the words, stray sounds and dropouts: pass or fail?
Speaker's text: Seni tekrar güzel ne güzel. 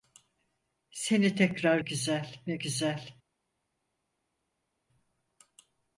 pass